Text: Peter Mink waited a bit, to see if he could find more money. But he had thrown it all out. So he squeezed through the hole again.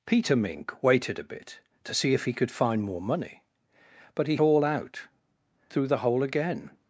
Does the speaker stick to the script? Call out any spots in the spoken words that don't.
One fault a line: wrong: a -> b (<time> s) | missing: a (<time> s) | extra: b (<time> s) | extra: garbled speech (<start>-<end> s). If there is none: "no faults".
missing: had thrown it (4.4 s)
missing: So he squeezed (5.0 s)